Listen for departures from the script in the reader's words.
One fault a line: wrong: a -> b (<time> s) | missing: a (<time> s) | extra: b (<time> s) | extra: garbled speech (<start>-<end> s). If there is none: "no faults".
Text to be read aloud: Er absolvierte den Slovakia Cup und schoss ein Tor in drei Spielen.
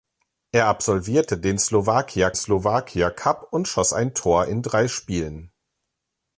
extra: Slovakia (2.4 s)